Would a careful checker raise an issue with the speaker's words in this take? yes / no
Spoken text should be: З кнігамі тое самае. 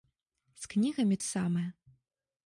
yes